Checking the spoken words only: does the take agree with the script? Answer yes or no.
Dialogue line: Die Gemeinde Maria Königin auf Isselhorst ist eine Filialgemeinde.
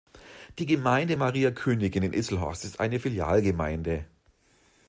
no